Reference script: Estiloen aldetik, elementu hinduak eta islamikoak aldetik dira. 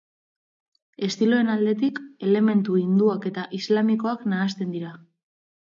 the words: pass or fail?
fail